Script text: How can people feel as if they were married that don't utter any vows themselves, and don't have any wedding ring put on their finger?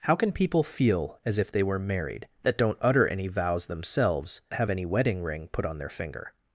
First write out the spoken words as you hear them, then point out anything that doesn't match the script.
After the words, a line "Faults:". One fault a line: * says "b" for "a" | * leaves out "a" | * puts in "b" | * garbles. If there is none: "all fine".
How can people feel as if they were married that don't utter any vows themselves, have any wedding ring put on their finger?
Faults:
* leaves out "and don't"